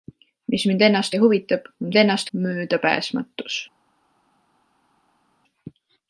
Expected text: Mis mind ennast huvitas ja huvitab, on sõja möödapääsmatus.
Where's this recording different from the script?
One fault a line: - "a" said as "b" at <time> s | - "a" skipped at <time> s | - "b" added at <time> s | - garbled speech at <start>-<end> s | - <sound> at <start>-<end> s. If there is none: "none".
- "huvitas" skipped at 1.1 s
- "sõja" said as "ennast" at 2.0 s